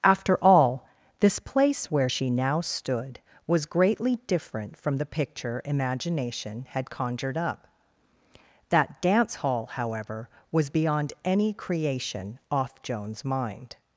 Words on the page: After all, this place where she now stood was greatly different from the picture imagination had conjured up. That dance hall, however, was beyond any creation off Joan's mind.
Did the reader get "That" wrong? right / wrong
right